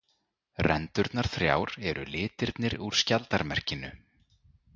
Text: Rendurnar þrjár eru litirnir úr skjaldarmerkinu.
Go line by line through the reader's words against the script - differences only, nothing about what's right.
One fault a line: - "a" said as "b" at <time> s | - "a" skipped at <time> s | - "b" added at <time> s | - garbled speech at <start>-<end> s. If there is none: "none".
none